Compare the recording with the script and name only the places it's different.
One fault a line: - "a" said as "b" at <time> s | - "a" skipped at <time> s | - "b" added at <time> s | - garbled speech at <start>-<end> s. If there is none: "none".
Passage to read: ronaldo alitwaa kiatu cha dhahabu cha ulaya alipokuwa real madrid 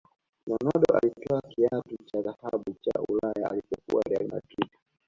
none